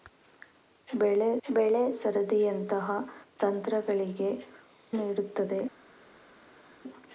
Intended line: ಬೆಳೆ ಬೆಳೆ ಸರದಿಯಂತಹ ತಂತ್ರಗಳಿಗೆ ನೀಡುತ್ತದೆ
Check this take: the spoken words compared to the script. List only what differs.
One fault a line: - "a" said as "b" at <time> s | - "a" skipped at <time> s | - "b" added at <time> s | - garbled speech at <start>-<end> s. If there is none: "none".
none